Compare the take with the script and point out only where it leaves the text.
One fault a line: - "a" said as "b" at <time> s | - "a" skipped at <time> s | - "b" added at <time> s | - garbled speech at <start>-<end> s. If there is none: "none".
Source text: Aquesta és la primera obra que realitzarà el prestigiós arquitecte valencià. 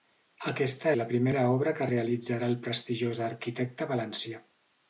- "és" skipped at 0.9 s